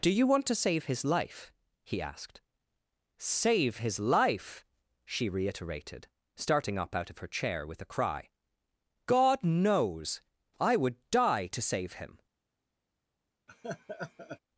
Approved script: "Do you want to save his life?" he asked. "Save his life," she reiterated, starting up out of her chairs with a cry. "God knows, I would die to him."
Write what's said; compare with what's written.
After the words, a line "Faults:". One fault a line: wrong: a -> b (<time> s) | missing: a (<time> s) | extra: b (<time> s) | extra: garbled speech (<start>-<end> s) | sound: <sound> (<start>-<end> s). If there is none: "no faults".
"Do you want to save his life?" he asked. "Save his life," she reiterated, starting up out of her chair with a cry. "God knows, I would die to save him."
Faults:
wrong: chairs -> chair (7.3 s)
extra: save (11.6 s)
sound: laugh (13.5-14.4 s)